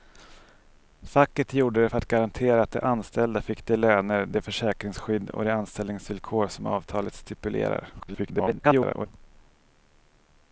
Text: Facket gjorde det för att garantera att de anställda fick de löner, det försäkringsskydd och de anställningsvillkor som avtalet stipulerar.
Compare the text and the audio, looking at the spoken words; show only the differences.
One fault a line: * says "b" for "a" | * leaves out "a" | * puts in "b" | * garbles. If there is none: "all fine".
* garbles